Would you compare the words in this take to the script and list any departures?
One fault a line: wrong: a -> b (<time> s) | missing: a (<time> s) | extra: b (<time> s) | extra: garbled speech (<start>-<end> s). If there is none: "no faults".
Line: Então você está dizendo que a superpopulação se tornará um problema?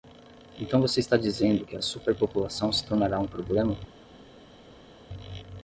no faults